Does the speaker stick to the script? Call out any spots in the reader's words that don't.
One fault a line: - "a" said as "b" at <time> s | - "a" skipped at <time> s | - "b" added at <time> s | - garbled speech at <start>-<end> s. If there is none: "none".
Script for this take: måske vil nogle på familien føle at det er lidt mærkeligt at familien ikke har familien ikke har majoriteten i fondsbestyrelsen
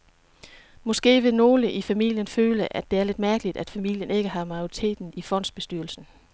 - "på" said as "i" at 1.7 s
- "familien ikke har" skipped at 4.5 s